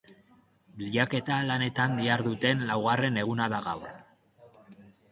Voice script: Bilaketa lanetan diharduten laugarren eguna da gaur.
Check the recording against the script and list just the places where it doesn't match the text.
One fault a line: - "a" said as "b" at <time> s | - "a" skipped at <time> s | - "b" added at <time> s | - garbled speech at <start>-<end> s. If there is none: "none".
none